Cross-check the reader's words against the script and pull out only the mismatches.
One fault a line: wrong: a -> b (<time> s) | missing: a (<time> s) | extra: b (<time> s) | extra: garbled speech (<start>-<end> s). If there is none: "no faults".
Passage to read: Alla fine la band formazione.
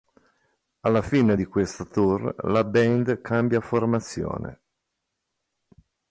extra: di questo tour (1.3 s)
extra: cambia (3.2 s)